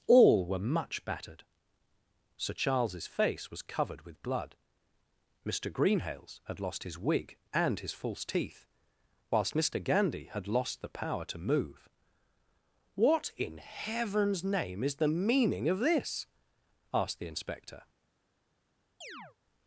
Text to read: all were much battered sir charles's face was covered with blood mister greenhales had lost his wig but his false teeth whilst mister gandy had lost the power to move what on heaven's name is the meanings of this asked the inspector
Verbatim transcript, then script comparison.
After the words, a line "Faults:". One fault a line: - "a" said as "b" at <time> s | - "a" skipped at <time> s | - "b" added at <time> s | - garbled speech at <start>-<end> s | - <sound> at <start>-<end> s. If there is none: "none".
all were much battered sir charles's face was covered with blood mister greenhales had lost his wig and his false teeth whilst mister gandy had lost the power to move what in heaven's name is the meaning of this asked the inspector
Faults:
- "but" said as "and" at 7.5 s
- "on" said as "in" at 13.4 s
- "meanings" said as "meaning" at 15.1 s
- chirp at 19.0-19.4 s